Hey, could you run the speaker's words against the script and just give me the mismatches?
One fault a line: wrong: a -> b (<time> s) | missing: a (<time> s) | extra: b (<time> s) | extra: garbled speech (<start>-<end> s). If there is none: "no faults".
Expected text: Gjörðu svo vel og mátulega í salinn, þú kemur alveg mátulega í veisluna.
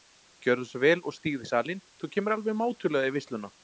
wrong: mátulega -> stígðu (1.2 s)